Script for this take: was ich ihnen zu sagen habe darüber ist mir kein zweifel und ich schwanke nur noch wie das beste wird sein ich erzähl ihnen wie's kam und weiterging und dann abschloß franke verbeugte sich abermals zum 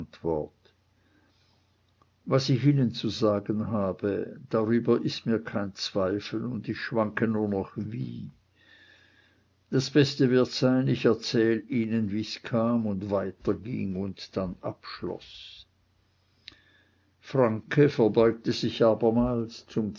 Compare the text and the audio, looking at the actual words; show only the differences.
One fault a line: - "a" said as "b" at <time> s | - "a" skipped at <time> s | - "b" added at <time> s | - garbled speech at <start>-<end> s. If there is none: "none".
none